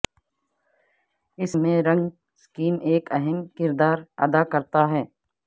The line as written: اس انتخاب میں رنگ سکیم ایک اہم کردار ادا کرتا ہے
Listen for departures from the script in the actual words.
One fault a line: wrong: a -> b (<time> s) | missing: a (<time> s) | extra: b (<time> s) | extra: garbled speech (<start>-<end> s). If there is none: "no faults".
missing: انتخاب (1.5 s)